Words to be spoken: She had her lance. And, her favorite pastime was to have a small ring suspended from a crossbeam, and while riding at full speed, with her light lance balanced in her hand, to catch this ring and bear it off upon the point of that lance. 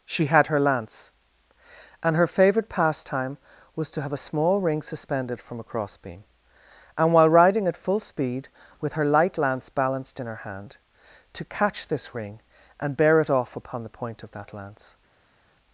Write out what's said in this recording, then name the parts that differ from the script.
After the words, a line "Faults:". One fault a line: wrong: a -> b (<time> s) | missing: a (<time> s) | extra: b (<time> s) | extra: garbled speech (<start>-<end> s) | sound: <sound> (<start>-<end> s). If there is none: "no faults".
She had her lance. And, her favorite pastime was to have a small ring suspended from a crossbeam, and while riding at full speed, with her light lance balanced in her hand, to catch this ring and bear it off upon the point of that lance.
Faults:
no faults